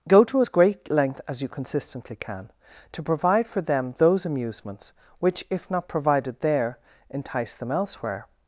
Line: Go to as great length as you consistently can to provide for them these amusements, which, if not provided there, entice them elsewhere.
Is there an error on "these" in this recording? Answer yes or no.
yes